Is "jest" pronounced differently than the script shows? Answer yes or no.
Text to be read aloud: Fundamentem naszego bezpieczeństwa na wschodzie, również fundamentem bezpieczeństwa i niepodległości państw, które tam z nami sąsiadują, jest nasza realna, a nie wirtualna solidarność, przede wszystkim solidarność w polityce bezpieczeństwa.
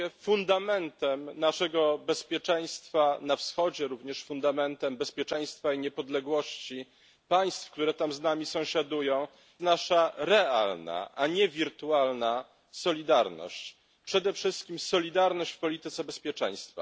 yes